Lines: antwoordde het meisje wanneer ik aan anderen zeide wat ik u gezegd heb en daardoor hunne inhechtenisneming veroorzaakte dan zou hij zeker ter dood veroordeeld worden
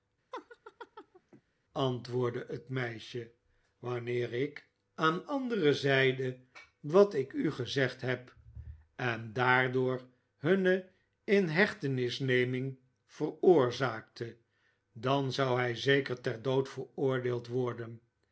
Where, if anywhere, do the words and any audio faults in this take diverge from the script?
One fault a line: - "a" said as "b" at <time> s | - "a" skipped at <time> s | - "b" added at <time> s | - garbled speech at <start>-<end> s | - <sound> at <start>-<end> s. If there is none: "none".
- laugh at 0.3-1.4 s